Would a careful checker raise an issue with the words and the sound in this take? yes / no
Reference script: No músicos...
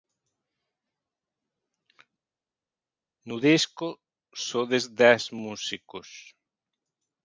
yes